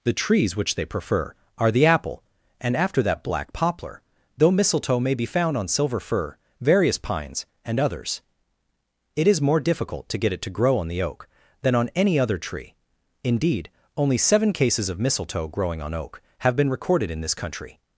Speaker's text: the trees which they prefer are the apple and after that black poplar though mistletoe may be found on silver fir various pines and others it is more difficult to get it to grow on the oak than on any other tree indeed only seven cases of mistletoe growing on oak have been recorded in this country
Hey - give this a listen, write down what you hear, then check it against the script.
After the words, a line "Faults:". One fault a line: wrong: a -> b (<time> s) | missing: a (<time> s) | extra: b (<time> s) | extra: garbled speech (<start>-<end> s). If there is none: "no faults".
the trees which they prefer are the apple and after that black poplar though mistletoe may be found on silver fir various pines and others it is more difficult to get it to grow on the oak than on any other tree indeed only seven cases of mistletoe growing on oak have been recorded in this country
Faults:
no faults